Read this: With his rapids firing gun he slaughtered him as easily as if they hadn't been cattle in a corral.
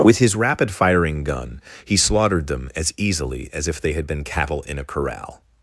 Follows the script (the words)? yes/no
no